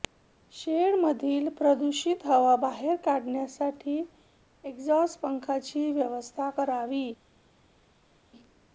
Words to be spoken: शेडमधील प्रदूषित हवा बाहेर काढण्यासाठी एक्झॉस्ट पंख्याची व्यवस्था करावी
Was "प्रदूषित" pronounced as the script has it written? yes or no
yes